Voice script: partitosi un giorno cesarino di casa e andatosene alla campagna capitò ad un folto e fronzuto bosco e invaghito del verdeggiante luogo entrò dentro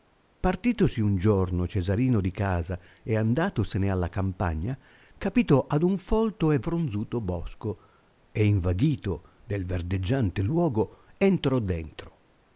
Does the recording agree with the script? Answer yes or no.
yes